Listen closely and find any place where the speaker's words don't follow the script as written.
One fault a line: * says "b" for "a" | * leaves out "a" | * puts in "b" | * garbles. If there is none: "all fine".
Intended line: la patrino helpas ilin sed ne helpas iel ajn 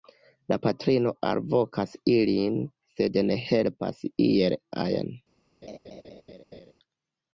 * says "alvokas" for "helpas"